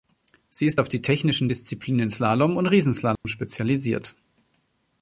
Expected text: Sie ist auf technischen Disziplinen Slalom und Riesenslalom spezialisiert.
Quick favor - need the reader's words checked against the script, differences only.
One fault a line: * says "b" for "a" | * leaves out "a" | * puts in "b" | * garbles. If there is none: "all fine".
* puts in "die"